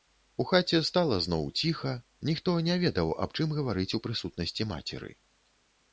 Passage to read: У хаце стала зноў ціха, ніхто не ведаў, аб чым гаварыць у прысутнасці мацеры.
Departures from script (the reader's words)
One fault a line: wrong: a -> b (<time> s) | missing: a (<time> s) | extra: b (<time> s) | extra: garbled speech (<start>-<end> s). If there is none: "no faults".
no faults